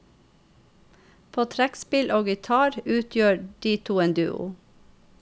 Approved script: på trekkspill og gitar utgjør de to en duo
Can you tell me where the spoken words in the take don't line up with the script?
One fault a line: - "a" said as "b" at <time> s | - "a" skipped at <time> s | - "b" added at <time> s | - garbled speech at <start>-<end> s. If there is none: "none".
none